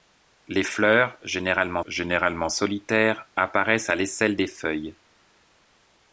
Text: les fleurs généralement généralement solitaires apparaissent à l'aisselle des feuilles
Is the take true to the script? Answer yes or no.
yes